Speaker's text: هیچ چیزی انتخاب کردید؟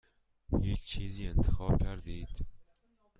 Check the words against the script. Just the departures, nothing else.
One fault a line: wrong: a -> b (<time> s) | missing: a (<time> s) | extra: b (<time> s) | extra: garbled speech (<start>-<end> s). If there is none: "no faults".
no faults